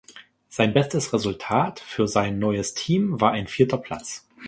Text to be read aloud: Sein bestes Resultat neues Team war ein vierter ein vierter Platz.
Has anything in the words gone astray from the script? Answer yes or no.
yes